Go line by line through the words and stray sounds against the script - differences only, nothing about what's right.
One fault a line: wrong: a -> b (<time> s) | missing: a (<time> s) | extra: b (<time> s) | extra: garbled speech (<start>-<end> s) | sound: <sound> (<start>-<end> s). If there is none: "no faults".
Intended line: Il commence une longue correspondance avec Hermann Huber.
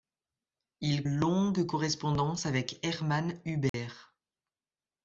missing: commence une (1.1 s)
sound: dropout (3.7-3.7 s)